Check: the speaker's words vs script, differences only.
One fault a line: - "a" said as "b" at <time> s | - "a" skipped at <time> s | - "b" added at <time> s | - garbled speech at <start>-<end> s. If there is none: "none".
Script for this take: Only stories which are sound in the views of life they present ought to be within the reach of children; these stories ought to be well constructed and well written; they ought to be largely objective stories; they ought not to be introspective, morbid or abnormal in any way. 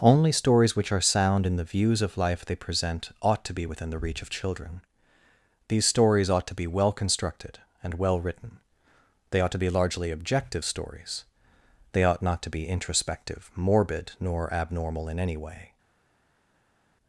- "or" said as "nor" at 14.2 s